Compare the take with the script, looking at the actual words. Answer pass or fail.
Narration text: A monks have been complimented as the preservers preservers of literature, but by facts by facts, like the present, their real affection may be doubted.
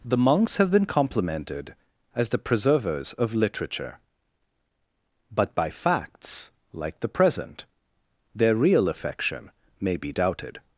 fail